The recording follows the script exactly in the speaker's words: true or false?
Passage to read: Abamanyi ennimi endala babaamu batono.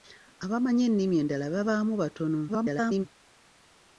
false